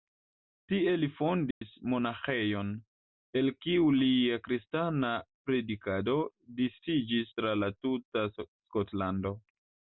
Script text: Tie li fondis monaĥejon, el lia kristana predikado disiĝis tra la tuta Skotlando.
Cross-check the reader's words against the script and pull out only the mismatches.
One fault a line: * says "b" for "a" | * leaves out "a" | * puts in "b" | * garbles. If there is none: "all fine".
* puts in "kiu"